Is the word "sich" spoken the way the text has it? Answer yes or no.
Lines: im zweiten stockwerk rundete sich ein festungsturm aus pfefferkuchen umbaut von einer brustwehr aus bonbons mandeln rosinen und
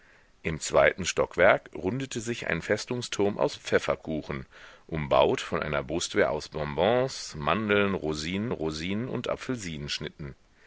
yes